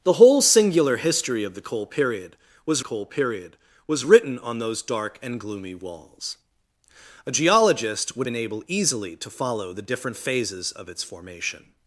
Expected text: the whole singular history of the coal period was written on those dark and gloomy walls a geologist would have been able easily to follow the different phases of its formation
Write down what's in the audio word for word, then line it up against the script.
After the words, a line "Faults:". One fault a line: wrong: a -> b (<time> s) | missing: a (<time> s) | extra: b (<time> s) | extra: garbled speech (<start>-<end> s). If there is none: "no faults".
the whole singular history of the coal period was coal period was written on those dark and gloomy walls a geologist would been able easily to follow the different phases of its formation
Faults:
extra: coal period was (2.8 s)
missing: have (8.3 s)